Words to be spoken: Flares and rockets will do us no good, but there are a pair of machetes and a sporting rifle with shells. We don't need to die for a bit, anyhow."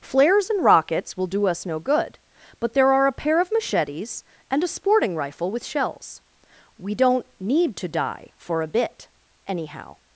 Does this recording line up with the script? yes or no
yes